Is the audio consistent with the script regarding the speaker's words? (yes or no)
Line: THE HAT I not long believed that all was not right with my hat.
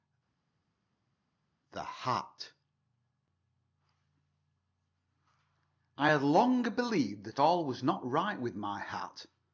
no